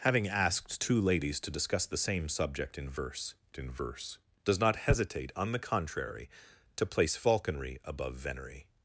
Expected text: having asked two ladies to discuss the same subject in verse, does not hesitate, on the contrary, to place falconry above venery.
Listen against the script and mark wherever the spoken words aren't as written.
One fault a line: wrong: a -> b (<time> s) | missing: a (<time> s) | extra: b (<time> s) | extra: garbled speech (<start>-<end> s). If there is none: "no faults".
extra: in verse (3.6 s)